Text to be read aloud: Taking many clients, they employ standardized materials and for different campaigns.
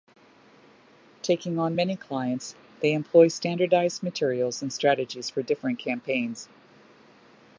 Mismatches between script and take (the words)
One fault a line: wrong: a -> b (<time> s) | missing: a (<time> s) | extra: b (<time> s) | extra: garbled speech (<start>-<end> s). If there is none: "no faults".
extra: on (1.6 s)
extra: strategies (4.7 s)